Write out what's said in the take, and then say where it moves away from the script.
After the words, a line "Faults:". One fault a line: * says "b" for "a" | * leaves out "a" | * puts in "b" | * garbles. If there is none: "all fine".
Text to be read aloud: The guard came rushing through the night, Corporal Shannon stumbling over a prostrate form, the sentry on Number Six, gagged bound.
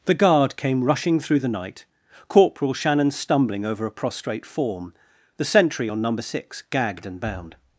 The guard came rushing through the night, Corporal Shannon stumbling over a prostrate form, the sentry on Number Six, gagged and bound.
Faults:
* puts in "and"